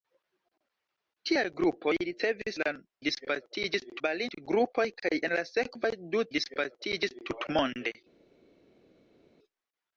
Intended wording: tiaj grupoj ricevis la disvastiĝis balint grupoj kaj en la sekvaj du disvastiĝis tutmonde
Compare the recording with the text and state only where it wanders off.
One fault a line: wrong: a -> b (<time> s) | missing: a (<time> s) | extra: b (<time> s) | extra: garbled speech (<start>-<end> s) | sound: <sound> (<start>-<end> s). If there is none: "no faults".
no faults